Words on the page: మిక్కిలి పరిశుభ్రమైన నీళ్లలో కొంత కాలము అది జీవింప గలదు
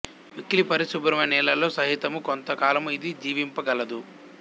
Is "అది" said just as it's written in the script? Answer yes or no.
no